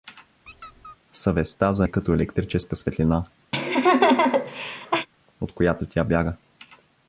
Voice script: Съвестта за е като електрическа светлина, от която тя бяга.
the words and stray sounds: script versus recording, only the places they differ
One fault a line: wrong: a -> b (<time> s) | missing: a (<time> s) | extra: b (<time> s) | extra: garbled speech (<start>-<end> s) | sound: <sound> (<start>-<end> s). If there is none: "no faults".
sound: squeak (0.5-1.0 s)
sound: laugh (3.5-5.1 s)